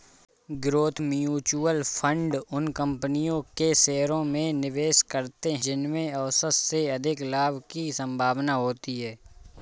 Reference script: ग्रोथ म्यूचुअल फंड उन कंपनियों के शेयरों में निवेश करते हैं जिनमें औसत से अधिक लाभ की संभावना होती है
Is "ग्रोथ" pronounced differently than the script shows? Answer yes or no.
no